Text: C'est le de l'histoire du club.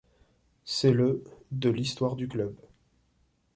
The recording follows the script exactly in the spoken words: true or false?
true